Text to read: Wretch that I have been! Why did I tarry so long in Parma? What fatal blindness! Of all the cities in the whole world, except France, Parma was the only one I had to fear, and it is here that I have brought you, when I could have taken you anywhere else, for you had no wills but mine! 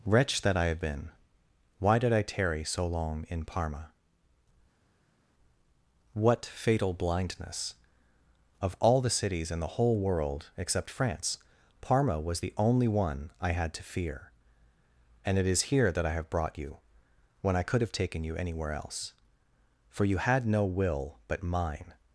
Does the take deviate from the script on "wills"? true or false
true